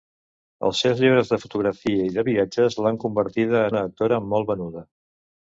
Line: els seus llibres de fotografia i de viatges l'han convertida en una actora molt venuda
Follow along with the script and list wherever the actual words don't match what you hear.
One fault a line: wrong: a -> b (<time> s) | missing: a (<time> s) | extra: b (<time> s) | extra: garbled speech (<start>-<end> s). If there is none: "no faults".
missing: en (3.7 s)